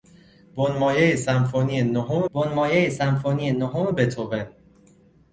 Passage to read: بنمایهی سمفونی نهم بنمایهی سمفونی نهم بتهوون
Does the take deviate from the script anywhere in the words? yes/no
no